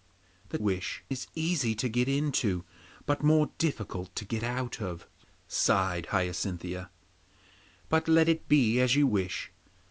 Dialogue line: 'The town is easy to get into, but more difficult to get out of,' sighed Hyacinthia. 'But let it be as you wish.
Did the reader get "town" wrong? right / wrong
wrong